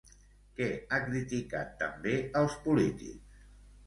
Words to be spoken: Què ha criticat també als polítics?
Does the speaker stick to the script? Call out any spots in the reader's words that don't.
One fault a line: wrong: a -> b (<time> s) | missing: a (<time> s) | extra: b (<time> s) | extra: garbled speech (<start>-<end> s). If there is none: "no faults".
no faults